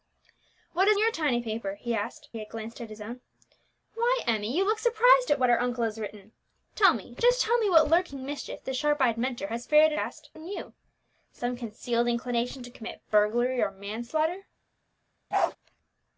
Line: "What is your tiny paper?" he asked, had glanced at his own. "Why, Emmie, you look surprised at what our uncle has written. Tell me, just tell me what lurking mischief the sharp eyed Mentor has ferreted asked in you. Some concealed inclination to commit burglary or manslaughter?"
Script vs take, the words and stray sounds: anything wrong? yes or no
yes